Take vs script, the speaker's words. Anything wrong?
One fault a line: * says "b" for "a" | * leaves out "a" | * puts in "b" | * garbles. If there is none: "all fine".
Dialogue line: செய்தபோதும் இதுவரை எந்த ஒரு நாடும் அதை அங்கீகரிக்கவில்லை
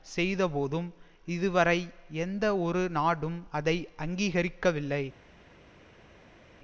all fine